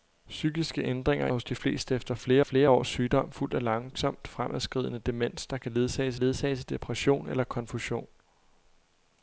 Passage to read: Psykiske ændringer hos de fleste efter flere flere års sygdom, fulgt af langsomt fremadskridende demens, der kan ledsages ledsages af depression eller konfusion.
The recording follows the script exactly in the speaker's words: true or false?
true